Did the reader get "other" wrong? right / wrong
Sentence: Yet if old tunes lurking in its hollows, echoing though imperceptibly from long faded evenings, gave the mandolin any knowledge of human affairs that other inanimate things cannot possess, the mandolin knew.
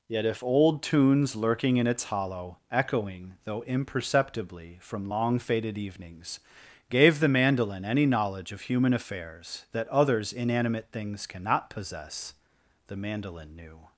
wrong